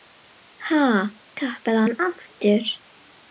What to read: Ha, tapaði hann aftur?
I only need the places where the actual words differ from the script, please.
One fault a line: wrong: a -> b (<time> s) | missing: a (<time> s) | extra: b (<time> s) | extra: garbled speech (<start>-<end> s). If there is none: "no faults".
no faults